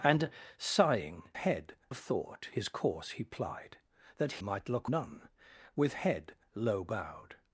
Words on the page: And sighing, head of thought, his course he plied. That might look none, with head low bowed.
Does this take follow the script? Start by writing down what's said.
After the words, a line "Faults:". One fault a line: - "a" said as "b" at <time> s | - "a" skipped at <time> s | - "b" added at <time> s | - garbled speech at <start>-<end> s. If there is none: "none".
And sighing, head of thought, his course he plied. That might look none, with head low bowed.
Faults:
none